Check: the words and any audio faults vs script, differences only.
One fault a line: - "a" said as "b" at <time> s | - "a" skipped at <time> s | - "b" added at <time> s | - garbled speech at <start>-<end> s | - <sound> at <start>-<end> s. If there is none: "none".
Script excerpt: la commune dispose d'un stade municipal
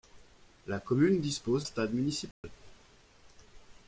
- "d'un" skipped at 1.7 s
- dropout at 2.3-2.4 s